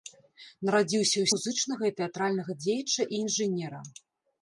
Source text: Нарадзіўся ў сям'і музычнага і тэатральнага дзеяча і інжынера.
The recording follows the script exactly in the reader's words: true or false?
false